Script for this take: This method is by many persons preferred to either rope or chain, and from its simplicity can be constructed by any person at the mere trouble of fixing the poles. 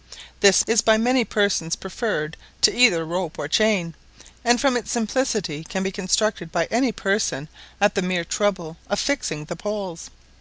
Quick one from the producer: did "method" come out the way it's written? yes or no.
no